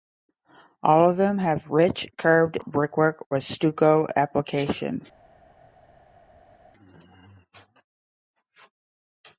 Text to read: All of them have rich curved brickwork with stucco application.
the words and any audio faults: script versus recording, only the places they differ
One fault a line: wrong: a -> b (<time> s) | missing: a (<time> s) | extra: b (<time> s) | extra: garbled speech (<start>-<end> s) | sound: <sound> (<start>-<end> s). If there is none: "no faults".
no faults